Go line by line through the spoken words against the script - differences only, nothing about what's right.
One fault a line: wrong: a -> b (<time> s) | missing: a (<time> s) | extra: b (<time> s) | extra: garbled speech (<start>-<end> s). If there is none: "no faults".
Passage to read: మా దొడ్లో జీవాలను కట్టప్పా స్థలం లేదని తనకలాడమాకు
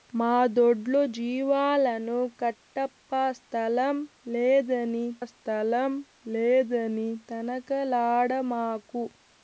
extra: స్థలం లేదని (5.2 s)